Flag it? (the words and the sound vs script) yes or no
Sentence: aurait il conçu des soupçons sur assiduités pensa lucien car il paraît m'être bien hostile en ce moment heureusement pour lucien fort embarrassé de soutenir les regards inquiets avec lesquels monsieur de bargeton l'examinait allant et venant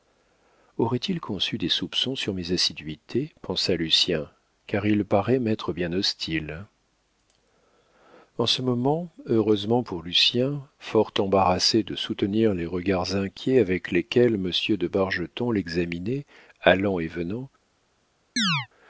yes